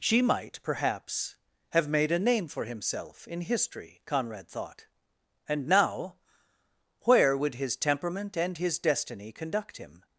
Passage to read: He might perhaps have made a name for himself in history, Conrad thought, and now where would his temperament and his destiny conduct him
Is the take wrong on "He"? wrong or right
wrong